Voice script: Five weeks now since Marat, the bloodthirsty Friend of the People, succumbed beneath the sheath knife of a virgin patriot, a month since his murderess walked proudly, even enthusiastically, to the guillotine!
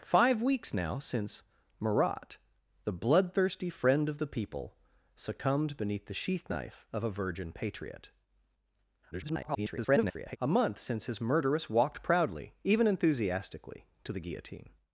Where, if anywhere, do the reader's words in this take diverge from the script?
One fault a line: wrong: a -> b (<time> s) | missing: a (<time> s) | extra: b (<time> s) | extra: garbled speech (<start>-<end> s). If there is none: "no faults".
extra: garbled speech (9.1-10.4 s)